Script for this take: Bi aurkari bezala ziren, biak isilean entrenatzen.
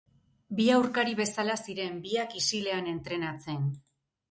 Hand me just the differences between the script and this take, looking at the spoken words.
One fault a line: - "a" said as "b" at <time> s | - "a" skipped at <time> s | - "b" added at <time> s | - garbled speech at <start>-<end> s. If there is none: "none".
none